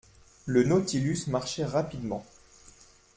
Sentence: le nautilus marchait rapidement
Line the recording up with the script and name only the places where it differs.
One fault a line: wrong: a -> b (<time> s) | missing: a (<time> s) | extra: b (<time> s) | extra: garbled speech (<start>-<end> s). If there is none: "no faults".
no faults